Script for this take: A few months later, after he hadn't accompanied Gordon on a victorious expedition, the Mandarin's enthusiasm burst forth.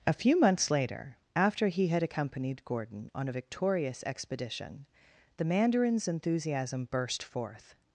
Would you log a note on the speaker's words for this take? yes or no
yes